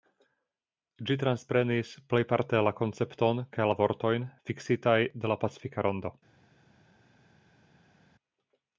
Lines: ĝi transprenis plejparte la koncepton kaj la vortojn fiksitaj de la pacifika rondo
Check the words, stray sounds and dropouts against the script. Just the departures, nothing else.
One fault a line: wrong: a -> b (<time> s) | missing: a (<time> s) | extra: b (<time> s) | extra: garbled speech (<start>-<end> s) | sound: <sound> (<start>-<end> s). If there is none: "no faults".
no faults